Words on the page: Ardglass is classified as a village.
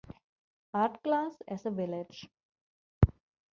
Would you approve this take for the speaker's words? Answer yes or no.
no